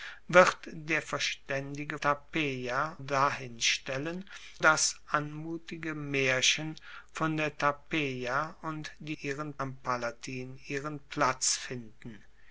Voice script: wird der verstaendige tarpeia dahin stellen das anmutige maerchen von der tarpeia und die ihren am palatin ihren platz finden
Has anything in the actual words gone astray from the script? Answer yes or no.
no